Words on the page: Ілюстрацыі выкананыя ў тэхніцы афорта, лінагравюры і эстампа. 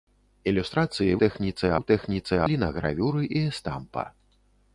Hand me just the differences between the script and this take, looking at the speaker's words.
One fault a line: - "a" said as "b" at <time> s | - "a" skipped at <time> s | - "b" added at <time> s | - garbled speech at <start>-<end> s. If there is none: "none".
- "выкананыя" said as "тэхніцы" at 1.2 s
- "афорта" skipped at 2.3 s